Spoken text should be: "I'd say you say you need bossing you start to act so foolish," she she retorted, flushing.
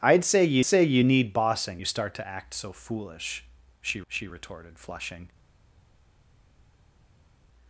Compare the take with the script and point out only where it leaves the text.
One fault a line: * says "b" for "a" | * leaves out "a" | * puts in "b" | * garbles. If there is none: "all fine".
all fine